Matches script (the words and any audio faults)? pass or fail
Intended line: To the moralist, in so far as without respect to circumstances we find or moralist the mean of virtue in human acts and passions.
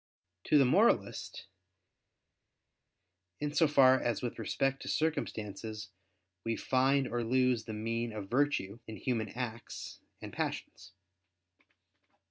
fail